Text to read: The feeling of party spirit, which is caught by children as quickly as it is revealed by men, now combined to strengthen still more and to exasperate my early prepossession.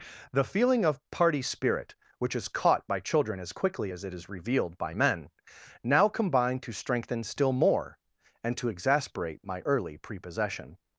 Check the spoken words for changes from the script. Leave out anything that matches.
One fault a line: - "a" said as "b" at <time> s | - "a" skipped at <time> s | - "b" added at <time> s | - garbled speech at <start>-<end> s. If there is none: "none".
none